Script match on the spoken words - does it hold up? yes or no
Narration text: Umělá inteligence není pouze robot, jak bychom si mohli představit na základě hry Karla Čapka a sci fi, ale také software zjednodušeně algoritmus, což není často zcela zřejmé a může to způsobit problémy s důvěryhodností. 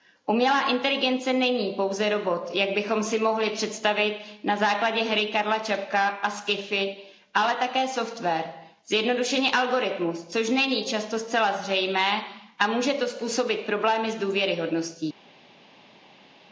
yes